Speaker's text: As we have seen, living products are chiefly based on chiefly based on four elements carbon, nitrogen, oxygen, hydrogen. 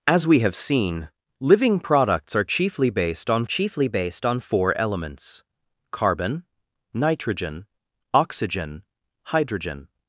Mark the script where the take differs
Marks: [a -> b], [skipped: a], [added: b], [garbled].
As we have seen, living products are chiefly based on chiefly based on four elements carbon, nitrogen, oxygen, hydrogen.